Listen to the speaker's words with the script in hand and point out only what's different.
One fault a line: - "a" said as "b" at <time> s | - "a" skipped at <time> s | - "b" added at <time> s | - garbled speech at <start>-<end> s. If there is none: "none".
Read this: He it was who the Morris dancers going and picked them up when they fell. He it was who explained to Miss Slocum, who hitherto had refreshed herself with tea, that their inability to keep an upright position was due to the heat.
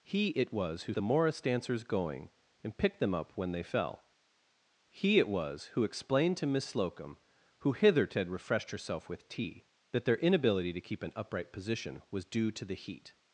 none